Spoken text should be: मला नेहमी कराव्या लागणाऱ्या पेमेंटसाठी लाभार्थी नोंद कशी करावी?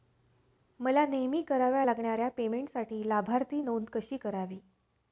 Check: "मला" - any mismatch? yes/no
no